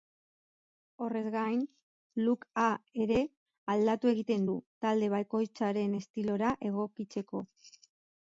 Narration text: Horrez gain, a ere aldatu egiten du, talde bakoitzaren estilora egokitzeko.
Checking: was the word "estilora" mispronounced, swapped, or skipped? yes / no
no